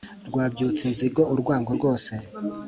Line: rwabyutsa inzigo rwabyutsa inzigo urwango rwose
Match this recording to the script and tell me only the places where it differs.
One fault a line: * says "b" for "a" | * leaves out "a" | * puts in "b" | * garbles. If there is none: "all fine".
* leaves out "rwabyutsa inzigo"